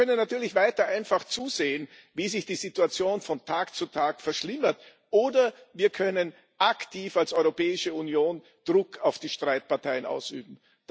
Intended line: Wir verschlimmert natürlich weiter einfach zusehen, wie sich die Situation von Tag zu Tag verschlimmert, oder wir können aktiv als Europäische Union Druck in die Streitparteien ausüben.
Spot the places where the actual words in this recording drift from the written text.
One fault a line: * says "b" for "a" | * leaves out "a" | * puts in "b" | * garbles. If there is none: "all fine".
* says "können" for "verschlimmert"
* says "auf" for "in"